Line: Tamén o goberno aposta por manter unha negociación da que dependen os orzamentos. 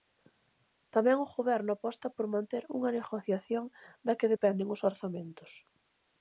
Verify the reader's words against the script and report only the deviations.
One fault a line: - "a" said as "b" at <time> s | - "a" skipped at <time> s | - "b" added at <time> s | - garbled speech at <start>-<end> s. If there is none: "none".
none